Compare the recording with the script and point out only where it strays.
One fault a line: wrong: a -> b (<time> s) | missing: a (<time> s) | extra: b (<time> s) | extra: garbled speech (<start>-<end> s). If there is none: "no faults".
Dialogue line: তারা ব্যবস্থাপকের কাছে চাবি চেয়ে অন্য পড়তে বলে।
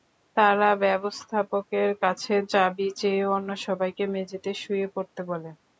extra: সবাইকে মেঝেতে শুয়ে (3.6 s)